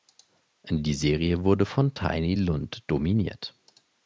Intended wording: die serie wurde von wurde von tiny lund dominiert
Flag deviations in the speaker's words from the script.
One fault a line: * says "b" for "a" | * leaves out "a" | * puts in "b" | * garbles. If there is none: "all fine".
* leaves out "wurde von"